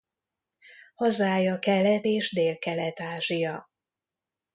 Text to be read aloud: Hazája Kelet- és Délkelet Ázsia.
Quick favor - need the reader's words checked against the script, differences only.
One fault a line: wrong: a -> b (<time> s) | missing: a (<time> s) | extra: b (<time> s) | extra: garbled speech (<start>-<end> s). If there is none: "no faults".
no faults